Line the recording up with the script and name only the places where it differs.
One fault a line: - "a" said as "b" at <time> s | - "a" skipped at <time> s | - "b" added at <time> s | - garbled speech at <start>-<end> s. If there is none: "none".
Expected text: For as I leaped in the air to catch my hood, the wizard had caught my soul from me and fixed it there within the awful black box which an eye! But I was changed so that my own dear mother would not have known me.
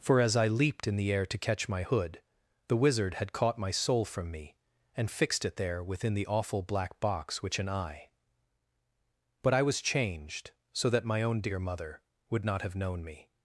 none